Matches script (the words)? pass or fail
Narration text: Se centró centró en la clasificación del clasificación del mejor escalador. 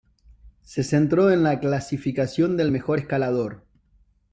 fail